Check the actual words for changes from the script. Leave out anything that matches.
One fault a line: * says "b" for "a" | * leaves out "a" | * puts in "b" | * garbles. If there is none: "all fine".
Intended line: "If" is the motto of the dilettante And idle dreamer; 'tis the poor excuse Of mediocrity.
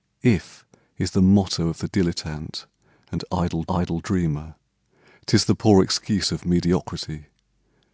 * puts in "idle"